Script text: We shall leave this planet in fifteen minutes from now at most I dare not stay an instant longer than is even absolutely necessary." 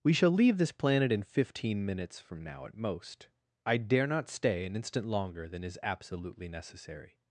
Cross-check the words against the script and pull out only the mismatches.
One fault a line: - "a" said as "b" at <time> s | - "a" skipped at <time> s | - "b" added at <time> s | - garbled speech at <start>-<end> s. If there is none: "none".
- "even" skipped at 5.8 s